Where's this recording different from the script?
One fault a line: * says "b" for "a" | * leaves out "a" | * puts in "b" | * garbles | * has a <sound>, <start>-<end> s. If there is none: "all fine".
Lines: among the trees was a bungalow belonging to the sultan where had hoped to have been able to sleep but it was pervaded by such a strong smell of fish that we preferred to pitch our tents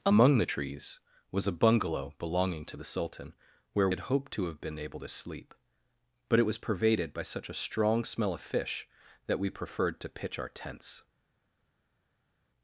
all fine